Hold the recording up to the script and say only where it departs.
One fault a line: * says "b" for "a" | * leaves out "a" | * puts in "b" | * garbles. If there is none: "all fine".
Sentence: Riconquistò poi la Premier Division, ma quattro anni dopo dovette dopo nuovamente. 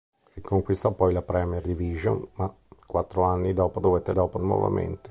all fine